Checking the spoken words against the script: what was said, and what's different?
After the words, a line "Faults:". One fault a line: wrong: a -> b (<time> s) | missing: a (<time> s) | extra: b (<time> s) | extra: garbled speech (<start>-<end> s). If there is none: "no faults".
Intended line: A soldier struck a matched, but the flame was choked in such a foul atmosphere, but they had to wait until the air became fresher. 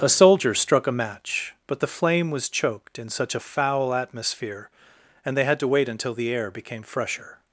A soldier struck a match, but the flame was choked in such a foul atmosphere, and they had to wait until the air became fresher.
Faults:
wrong: matched -> match (0.9 s)
wrong: but -> and (5.2 s)